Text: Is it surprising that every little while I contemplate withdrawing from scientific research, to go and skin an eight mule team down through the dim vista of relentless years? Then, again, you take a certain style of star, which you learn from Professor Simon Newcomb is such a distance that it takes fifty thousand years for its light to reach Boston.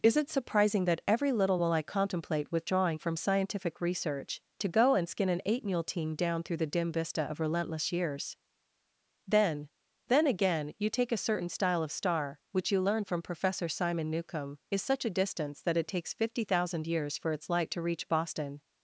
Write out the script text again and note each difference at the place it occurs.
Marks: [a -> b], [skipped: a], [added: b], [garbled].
Is it surprising that every little while I contemplate withdrawing from scientific research, to go and skin an eight mule team down through the dim vista of relentless years? Then, [added: Then] again, you take a certain style of star, which you learn from Professor Simon Newcomb is such a distance that it takes fifty thousand years for its light to reach Boston.